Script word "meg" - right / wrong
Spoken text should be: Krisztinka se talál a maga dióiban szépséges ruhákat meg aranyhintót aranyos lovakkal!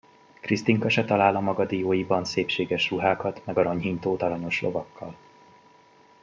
right